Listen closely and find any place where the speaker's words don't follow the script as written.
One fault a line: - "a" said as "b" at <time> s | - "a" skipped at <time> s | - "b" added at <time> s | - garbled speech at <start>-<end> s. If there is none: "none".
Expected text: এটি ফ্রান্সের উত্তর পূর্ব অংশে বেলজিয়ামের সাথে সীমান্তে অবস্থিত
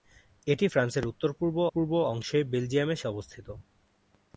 - "পূর্ব" added at 1.7 s
- "সাথে সীমান্তে" skipped at 3.0 s